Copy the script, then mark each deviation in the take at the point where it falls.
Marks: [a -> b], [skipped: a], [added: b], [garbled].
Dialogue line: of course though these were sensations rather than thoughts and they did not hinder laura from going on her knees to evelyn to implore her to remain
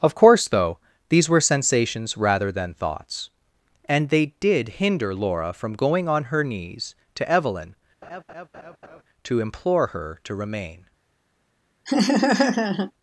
of course though these were sensations rather than thoughts and they did [skipped: not] hinder laura from going on her knees to evelyn to implore her to remain